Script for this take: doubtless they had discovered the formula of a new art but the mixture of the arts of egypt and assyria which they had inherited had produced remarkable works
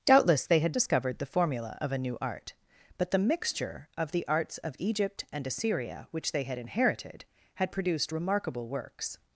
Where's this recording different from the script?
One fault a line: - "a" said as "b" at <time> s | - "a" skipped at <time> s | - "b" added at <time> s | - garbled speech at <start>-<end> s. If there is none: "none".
none